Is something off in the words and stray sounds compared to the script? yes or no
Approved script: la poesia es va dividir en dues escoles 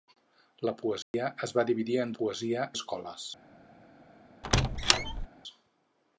yes